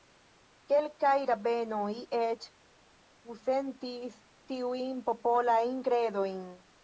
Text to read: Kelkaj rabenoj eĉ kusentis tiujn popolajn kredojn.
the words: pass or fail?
pass